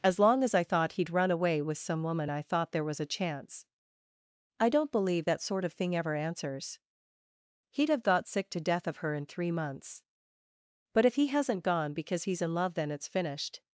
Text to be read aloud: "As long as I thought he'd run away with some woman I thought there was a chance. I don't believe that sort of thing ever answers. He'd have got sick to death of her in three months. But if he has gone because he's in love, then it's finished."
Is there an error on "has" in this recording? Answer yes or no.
yes